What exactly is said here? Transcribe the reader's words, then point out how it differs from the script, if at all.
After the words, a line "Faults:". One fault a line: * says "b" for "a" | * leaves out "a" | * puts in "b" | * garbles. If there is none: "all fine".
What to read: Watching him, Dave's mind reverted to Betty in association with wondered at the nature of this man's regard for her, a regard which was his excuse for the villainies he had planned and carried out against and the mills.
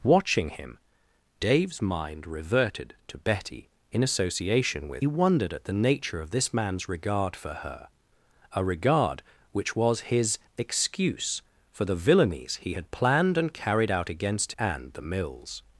Watching him, Dave's mind reverted to Betty in association with wondered at the nature of this man's regard for her, a regard which was his excuse for the villainies he had planned and carried out against and the mills.
Faults:
all fine